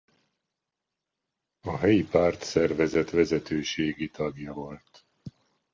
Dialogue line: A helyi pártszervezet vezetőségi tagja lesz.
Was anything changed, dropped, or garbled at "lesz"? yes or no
yes